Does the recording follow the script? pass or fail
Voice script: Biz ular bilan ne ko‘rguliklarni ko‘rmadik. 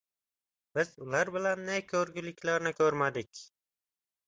pass